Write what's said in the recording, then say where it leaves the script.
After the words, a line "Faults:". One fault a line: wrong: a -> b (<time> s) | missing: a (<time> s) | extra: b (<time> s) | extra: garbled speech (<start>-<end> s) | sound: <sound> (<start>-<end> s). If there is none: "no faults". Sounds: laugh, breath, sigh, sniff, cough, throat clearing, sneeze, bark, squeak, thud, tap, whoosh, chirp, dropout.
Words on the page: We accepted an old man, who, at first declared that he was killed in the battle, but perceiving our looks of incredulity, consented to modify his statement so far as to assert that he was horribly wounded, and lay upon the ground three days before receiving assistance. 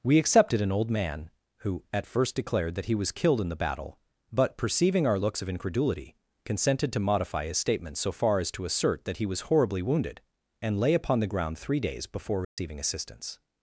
We accepted an old man, who, at first declared that he was killed in the battle, but perceiving our looks of incredulity, consented to modify his statement so far as to assert that he was horribly wounded, and lay upon the ground three days before receiving assistance.
Faults:
sound: dropout (12.4-12.6 s)